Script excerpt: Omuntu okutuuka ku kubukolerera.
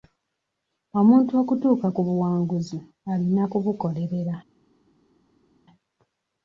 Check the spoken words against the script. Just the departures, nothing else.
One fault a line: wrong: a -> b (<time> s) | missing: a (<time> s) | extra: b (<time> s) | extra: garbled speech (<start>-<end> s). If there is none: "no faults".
extra: buwanguzi alina (2.1 s)